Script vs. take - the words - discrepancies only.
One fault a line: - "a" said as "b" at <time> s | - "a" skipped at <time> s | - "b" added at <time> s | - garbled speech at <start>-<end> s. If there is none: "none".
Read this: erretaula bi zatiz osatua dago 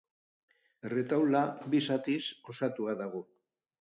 none